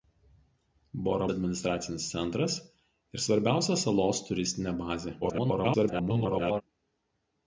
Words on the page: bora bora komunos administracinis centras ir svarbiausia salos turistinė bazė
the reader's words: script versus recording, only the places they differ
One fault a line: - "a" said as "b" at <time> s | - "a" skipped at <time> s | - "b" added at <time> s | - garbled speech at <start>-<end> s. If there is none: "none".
- "bora komunos" skipped at 1.3 s
- garbled speech at 5.2-6.6 s